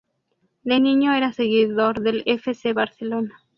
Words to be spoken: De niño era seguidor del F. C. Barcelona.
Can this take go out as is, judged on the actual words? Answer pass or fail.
pass